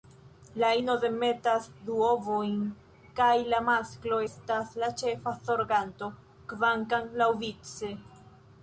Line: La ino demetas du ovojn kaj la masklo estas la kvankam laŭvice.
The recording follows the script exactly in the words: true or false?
false